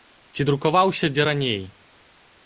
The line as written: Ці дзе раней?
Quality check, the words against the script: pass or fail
fail